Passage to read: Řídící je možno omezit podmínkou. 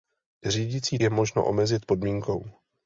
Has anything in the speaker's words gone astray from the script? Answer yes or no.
no